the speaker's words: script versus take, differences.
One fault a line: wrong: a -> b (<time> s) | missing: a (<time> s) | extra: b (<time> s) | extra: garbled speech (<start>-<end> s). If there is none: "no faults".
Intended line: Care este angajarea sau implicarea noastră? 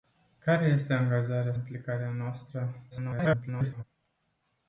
missing: sau (1.5 s)
extra: garbled speech (2.9-3.8 s)